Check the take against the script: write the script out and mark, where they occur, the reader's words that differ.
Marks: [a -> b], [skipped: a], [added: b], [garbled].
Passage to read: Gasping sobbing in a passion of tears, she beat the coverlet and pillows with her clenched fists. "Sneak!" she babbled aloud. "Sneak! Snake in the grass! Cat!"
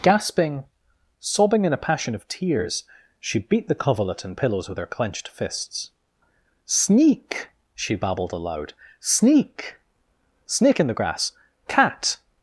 Gasping sobbing in a passion of tears, she beat the coverlet and pillows with her clenched fists. "Sneak!" she babbled aloud. "Sneak! Snake in the grass! Cat!"